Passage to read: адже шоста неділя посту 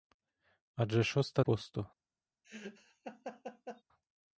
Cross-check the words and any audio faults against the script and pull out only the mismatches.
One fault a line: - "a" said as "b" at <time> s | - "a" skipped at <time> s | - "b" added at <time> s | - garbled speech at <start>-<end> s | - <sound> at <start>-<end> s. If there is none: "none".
- "неділя" skipped at 1.4 s
- laugh at 2.4-3.8 s